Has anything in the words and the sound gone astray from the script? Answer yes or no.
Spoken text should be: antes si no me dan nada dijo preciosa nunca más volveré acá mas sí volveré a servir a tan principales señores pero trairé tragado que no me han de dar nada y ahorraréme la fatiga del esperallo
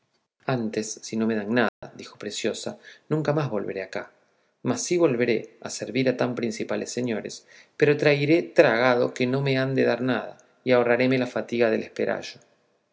yes